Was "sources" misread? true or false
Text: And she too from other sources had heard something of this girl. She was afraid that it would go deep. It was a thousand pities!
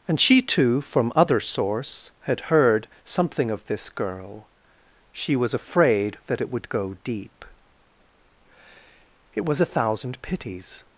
true